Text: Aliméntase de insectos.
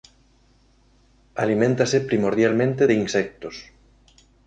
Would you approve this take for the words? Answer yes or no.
no